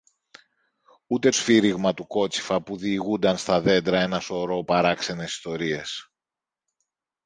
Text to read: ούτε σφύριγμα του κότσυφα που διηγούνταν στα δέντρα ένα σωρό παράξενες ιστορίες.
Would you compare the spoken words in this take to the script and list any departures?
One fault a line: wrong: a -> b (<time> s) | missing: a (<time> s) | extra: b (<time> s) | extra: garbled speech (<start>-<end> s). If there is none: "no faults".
no faults